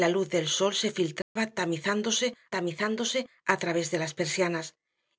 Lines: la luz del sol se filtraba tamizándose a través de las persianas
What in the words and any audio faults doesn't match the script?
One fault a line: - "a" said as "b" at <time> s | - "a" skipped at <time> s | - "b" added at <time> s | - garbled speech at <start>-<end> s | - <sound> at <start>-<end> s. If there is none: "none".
- dropout at 1.2-1.4 s
- "tamizándose" added at 2.5 s